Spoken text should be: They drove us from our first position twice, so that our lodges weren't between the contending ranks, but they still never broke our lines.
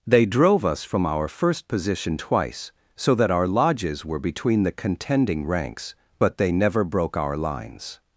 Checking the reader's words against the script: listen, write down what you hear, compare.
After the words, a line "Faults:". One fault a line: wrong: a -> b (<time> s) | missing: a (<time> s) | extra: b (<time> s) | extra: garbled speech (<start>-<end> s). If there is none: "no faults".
They drove us from our first position twice, so that our lodges were between the contending ranks, but they never broke our lines.
Faults:
wrong: weren't -> were (4.1 s)
missing: still (6.5 s)